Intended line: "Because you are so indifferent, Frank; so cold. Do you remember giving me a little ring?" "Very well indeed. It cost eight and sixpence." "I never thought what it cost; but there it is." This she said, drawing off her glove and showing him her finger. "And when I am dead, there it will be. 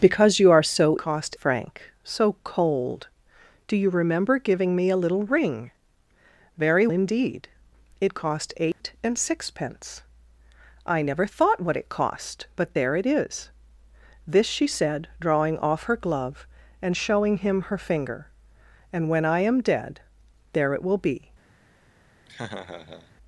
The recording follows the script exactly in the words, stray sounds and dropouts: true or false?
false